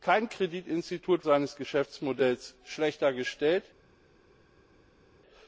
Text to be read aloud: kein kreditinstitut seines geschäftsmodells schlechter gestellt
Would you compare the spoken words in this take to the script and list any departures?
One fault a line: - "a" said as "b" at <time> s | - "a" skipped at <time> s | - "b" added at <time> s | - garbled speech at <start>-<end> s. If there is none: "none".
none